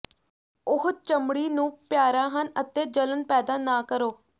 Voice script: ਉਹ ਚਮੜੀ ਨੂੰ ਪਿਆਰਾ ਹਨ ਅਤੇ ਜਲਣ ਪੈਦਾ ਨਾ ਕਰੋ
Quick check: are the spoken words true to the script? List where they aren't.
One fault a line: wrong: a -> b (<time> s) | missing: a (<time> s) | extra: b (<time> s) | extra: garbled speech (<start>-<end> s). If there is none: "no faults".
no faults